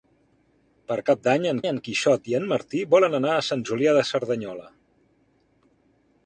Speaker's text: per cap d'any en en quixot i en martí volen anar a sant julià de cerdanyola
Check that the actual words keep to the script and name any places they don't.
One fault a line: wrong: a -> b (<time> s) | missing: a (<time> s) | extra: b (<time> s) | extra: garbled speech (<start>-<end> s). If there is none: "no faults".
no faults